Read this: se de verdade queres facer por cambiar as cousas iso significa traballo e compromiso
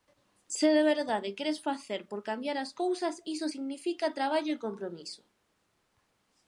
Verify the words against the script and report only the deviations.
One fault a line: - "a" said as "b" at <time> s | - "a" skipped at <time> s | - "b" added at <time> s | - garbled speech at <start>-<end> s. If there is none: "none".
none